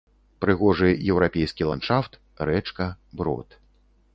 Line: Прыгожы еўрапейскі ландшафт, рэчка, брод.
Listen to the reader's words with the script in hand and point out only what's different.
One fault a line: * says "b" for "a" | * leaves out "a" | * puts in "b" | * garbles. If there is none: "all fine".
all fine